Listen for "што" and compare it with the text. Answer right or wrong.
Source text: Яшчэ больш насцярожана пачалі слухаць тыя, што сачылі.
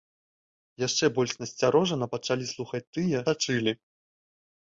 wrong